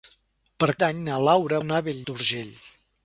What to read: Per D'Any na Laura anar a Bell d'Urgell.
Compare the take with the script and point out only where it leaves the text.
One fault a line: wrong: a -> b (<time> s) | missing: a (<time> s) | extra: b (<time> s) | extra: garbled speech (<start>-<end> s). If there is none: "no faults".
no faults